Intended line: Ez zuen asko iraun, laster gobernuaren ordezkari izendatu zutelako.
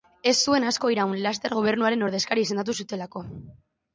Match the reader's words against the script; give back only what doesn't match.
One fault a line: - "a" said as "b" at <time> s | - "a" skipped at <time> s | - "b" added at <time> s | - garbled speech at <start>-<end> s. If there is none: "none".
none